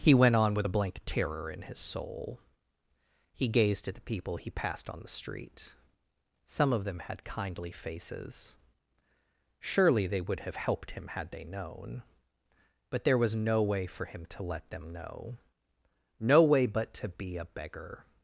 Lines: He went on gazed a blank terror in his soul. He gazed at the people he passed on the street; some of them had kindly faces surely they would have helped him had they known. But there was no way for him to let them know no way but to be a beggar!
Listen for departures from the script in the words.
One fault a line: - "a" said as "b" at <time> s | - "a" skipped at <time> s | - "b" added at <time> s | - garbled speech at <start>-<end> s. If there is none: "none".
- "gazed" said as "with" at 0.6 s